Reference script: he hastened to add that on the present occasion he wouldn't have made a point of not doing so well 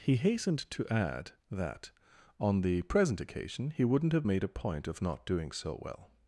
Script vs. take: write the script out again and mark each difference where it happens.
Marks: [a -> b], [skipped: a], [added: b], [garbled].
he hastened to add that on the present occasion he wouldn't have made a point of not doing so well